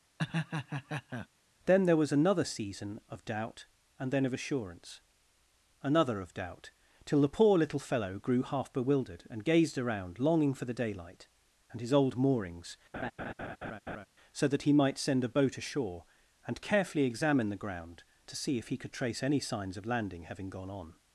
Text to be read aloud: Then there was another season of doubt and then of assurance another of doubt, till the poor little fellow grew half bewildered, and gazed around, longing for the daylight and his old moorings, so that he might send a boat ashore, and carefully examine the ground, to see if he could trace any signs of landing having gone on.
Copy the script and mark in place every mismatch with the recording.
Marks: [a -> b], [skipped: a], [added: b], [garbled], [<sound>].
[laugh] Then there was another season of doubt and then of assurance another of doubt, till the poor little fellow grew half bewildered, and gazed around, longing for the daylight and his old moorings, [laugh] so that he might send a boat ashore, and carefully examine the ground, to see if he could trace any signs of landing having gone on.